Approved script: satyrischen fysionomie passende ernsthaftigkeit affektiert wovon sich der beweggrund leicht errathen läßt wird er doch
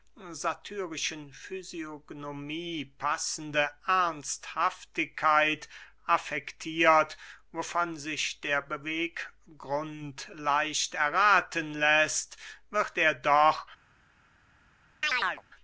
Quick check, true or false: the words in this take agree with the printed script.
true